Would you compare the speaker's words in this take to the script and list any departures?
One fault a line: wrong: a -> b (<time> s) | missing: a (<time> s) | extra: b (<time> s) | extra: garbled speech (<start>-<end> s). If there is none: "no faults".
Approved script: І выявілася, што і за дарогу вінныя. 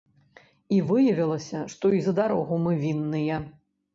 extra: мы (2.6 s)